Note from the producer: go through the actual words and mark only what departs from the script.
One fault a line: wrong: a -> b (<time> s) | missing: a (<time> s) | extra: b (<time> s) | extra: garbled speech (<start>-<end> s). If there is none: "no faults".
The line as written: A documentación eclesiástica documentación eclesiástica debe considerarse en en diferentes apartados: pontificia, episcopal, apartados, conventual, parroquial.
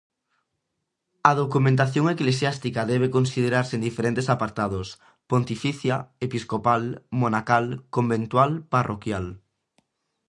missing: documentación eclesiástica (2.8 s)
missing: en (3.9 s)
wrong: apartados -> monacal (7.2 s)